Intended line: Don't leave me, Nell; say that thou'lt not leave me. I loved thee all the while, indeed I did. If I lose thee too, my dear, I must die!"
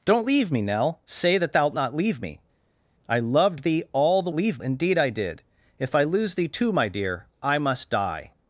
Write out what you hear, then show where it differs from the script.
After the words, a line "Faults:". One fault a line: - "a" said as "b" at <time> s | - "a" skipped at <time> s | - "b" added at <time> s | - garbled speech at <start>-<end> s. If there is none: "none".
Don't leave me, Nell; say that thou'lt not leave me. I loved thee all the leave, indeed I did. If I lose thee too, my dear, I must die!"
Faults:
- "while" said as "leave" at 4.3 s